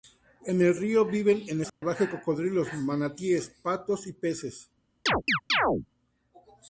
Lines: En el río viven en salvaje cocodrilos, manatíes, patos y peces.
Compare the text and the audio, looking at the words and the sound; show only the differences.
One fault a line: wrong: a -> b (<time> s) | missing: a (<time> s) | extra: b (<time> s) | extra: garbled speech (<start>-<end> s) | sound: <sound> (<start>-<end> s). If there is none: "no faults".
sound: dropout (1.7-1.8 s)
sound: chirp (5.1-5.9 s)